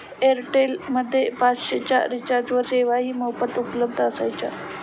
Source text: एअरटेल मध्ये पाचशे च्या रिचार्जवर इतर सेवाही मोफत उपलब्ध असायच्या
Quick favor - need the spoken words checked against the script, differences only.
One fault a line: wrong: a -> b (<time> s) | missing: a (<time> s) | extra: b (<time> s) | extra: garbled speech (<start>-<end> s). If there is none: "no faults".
missing: इतर (2.6 s)